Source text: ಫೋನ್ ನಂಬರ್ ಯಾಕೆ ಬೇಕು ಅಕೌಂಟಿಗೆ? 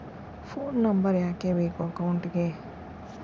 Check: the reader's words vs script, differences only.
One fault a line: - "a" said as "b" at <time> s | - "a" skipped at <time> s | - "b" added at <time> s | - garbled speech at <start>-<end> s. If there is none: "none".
none